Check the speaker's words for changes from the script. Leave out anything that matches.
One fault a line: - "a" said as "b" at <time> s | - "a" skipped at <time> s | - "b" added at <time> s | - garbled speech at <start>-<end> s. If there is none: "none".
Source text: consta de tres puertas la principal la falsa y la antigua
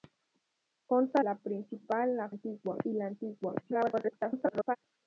- "de tres puertas" skipped at 1.2 s
- "falsa" said as "antigua" at 2.3 s
- garbled speech at 3.6-4.8 s